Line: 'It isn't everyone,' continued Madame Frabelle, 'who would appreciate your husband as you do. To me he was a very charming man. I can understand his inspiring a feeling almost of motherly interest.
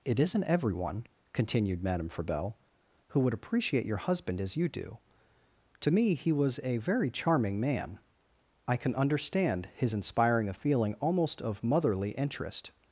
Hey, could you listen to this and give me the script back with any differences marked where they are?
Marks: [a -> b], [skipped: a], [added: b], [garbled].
'It isn't everyone,' continued Madame Frabelle, 'who would appreciate your husband as you do. To me he was a very charming man. I can understand his inspiring a feeling almost of motherly interest.